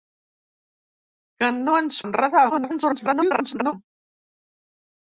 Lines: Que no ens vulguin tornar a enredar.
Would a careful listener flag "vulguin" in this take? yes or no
yes